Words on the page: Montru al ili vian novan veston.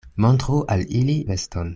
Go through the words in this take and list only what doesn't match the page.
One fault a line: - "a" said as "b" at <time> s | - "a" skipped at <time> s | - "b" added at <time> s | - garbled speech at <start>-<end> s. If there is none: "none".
- "vian novan" skipped at 1.2 s